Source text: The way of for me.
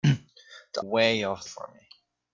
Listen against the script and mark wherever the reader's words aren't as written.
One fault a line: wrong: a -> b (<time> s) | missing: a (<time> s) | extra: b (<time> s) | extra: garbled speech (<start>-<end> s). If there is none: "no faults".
no faults